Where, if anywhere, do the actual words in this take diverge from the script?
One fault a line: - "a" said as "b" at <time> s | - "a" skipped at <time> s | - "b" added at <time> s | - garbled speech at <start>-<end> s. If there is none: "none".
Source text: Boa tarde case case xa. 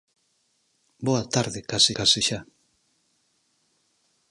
none